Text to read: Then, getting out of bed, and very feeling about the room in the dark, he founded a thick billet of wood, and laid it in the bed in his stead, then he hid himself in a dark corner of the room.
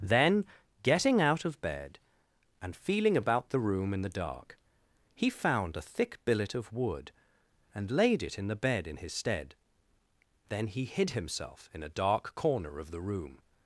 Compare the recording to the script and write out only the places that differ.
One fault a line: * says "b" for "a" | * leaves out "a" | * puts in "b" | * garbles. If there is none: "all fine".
* leaves out "very"
* says "found" for "founded"